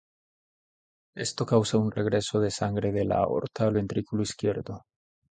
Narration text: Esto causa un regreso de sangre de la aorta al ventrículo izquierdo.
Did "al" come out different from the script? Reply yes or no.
no